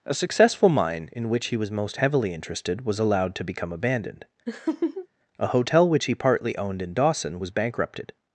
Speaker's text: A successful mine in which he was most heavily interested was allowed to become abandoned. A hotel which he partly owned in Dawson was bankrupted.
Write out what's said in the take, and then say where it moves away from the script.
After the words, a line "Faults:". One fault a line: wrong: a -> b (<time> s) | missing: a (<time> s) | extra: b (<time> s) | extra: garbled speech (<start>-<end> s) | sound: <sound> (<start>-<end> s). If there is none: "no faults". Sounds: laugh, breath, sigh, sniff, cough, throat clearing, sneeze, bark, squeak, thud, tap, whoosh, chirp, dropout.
A successful mine in which he was most heavily interested was allowed to become abandoned. A hotel which he partly owned in Dawson was bankrupted.
Faults:
sound: laugh (4.5-5.1 s)